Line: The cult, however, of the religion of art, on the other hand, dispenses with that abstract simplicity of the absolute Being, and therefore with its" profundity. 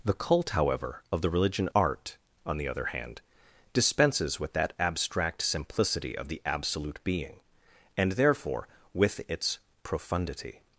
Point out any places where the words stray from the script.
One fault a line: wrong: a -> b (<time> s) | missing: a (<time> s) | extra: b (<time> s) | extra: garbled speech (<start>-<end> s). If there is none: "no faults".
missing: of (1.7 s)